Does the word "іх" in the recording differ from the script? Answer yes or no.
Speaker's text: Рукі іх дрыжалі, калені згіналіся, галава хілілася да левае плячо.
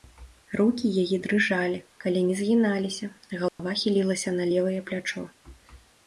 yes